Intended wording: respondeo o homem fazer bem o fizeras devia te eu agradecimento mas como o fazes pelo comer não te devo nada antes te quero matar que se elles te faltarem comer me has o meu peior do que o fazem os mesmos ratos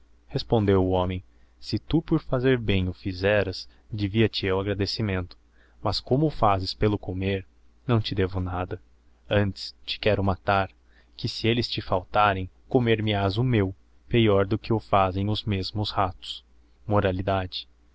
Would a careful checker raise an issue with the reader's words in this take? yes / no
yes